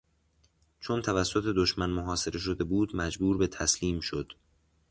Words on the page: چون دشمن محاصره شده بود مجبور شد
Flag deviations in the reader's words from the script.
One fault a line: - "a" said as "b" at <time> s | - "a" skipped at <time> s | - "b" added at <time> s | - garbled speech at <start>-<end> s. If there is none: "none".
- "توسط" added at 1.0 s
- "به تسلیم" added at 3.4 s